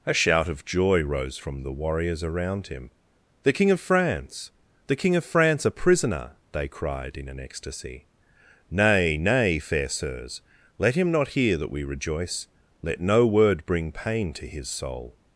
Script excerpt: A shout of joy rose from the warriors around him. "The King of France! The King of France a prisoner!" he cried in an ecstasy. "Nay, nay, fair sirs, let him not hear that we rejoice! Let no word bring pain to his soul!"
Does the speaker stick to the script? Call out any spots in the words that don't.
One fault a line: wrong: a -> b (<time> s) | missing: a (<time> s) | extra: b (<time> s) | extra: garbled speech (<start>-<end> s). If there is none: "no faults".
wrong: he -> they (6.5 s)